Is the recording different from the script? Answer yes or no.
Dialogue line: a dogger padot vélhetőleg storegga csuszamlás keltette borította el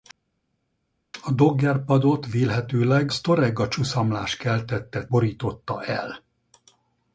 no